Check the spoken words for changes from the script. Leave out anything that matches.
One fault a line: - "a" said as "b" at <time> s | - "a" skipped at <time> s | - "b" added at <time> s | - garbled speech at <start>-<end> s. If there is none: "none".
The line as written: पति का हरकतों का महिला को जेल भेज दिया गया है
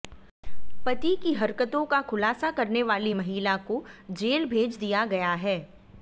- "का" said as "की" at 1.1 s
- "खुलासा करने वाली" added at 2.0 s